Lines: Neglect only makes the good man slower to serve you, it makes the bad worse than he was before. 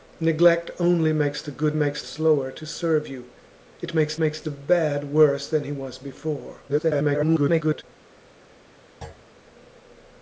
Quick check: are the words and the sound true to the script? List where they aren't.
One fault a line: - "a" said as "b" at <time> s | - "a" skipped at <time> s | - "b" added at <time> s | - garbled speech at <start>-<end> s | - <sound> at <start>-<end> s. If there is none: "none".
- "man" said as "makes" at 1.7 s
- "makes" added at 4.2 s
- garbled speech at 6.7-7.8 s
- thud at 9.0-9.3 s